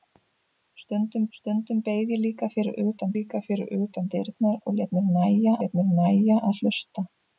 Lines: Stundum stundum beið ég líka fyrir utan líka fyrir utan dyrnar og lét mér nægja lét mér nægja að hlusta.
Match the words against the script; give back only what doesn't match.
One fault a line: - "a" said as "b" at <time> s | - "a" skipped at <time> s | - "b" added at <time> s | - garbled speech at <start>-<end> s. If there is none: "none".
none